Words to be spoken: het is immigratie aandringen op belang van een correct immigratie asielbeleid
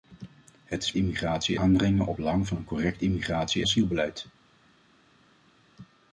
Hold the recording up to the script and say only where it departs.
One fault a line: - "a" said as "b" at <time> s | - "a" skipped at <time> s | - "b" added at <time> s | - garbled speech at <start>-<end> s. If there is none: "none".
none